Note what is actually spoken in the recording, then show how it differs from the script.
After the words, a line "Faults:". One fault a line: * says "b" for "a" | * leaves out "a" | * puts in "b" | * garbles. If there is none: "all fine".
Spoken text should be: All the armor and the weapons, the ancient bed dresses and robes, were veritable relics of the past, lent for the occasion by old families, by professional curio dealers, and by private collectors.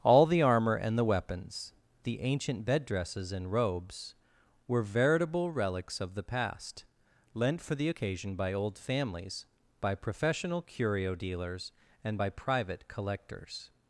All the armor and the weapons, the ancient bed dresses and robes, were veritable relics of the past, lent for the occasion by old families, by professional curio dealers, and by private collectors.
Faults:
all fine